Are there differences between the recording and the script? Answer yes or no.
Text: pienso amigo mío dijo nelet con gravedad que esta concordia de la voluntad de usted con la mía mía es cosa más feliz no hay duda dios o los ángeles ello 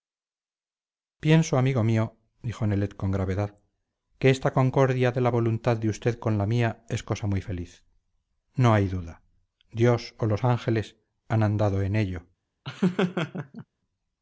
yes